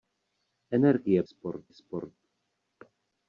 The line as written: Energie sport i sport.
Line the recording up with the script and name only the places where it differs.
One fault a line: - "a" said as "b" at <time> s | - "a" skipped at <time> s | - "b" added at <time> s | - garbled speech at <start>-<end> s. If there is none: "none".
none